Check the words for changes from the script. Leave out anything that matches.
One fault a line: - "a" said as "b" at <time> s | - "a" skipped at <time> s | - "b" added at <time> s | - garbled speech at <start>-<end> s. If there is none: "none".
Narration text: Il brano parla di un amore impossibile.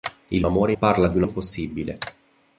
- "brano" said as "amore" at 0.4 s
- "amore" skipped at 1.2 s